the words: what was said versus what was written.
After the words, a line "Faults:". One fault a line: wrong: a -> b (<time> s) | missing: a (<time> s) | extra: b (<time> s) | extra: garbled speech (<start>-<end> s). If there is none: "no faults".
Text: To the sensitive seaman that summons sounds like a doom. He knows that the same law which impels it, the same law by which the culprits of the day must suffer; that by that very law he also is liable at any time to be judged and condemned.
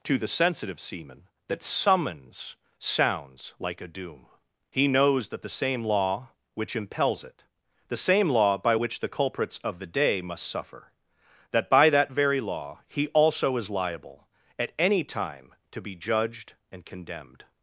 To the sensitive seaman that summons sounds like a doom. He knows that the same law which impels it, the same law by which the culprits of the day must suffer; that by that very law he also is liable at any time to be judged and condemned.
Faults:
no faults